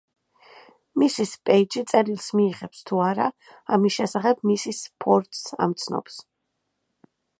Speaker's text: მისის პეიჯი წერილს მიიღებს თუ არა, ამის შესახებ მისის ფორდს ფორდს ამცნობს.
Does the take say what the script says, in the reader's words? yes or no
no